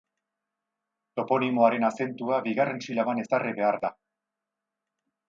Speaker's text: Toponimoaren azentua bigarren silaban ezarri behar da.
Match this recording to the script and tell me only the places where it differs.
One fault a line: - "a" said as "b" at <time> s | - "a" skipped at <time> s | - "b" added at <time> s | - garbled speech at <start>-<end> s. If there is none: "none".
none